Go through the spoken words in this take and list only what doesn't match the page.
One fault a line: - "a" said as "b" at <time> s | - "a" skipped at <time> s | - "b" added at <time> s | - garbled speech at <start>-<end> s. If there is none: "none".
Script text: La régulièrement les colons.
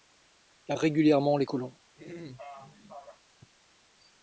none